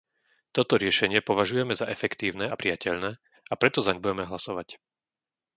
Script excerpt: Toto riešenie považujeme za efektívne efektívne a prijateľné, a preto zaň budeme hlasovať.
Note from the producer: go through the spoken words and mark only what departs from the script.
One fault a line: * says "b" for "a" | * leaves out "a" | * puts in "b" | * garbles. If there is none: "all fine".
* leaves out "efektívne"